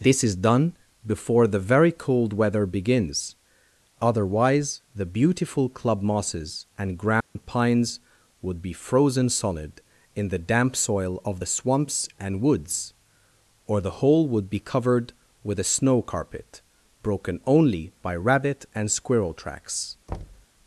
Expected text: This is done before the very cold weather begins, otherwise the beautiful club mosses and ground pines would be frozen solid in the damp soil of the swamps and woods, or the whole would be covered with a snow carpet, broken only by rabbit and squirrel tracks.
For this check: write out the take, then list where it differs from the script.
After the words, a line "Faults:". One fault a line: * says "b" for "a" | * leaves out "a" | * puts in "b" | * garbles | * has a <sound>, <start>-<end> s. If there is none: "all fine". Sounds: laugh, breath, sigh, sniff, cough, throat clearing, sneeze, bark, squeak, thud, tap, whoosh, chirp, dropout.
This is done before the very cold weather begins, otherwise the beautiful club mosses and ground pines would be frozen solid in the damp soil of the swamps and woods, or the whole would be covered with a snow carpet, broken only by rabbit and squirrel tracks.
Faults:
* has a dropout, 7.2-7.4 s
* has a thud, 20.1-20.5 s